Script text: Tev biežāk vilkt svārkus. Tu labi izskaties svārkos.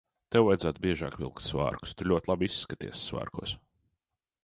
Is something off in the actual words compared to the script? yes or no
yes